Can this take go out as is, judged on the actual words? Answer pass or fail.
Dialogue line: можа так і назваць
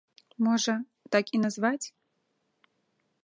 pass